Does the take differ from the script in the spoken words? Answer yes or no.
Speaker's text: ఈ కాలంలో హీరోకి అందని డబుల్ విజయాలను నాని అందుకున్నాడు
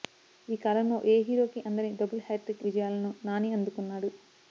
yes